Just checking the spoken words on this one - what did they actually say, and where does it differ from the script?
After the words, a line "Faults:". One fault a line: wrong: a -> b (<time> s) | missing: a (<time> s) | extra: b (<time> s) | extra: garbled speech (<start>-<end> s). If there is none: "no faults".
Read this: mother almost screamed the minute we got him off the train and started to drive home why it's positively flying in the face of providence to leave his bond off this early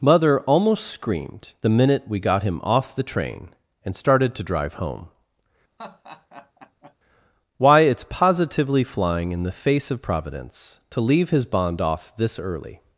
mother almost screamed the minute we got him off the train and started to drive home why it's positively flying in the face of providence to leave his bond off this early
Faults:
no faults